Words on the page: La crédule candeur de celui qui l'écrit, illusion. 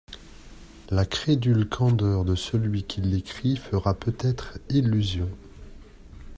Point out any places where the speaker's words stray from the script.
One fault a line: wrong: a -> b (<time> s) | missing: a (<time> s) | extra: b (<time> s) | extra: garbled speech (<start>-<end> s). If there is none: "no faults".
extra: fera peut être (3.6 s)